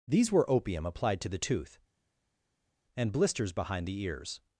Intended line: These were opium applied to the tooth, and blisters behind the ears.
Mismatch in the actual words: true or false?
false